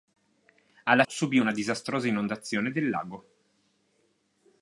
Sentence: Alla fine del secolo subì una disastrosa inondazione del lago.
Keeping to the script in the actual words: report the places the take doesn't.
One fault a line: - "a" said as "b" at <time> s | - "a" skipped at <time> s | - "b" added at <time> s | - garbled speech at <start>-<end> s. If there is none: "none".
- "fine del secolo" skipped at 1.0 s